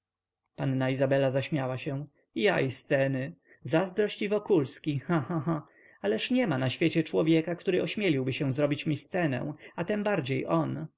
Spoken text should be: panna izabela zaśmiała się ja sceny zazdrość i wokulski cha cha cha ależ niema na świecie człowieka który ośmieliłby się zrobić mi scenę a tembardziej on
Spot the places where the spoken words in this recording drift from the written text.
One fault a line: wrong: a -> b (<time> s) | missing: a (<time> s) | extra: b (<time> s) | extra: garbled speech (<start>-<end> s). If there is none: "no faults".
extra: i (2.6 s)